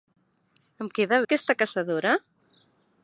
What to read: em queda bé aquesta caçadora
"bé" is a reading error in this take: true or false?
true